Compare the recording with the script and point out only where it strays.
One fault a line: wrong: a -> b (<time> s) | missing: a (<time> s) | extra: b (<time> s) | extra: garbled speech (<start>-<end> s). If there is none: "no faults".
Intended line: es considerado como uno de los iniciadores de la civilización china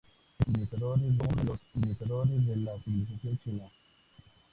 wrong: considerado -> iniciadores (0.5 s)